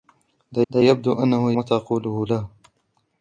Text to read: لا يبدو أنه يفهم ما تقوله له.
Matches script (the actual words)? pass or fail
fail